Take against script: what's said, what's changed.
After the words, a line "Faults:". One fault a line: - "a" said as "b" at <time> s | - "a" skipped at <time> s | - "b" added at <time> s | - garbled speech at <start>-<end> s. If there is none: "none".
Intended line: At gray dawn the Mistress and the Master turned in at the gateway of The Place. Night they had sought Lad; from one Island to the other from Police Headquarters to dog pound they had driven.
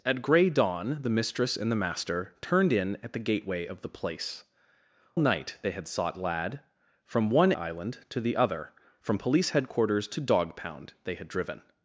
At gray dawn the Mistress and the Master turned in at the gateway of The Place. Night they had sought Lad; from one Island to the other from Police Headquarters to dog pound they had driven.
Faults:
none